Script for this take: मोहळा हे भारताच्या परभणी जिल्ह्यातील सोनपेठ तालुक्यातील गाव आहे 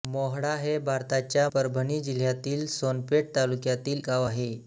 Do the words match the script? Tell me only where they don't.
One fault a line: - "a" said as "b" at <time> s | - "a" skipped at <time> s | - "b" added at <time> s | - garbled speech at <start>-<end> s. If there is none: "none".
none